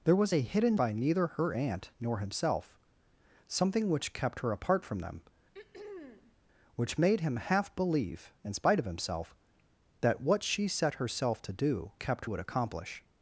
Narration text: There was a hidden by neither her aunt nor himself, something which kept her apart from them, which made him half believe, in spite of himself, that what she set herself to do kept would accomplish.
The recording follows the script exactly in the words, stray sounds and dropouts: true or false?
false